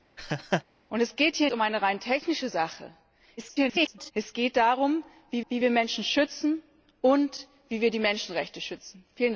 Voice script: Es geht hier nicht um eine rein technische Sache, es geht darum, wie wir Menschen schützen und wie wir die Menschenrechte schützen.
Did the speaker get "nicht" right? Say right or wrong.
wrong